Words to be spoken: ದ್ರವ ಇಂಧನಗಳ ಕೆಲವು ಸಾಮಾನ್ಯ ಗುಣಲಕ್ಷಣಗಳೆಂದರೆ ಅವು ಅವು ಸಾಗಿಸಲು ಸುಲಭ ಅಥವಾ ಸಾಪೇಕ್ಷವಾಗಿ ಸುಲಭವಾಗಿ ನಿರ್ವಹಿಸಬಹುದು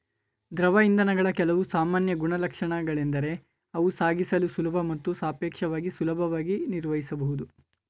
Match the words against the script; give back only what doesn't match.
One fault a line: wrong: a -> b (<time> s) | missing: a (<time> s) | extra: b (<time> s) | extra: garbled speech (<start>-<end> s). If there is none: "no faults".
missing: ಅವು (3.9 s)
wrong: ಅಥವಾ -> ಮತ್ತು (4.8 s)